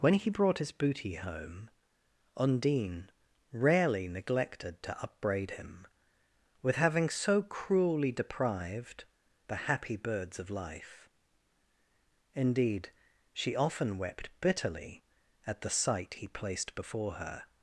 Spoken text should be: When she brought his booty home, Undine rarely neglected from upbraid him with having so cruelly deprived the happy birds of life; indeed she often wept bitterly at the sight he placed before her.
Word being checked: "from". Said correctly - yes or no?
no